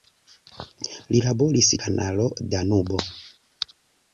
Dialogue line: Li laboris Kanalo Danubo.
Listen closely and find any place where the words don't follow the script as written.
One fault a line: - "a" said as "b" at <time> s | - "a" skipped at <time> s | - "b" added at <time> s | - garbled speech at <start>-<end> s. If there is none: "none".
none